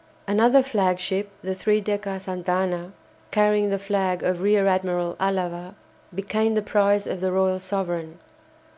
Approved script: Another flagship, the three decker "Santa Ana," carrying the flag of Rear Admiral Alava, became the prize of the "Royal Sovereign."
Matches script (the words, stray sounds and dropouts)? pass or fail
pass